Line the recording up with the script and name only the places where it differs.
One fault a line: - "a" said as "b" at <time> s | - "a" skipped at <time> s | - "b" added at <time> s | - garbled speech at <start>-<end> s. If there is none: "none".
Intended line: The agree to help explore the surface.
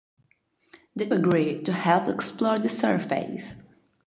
none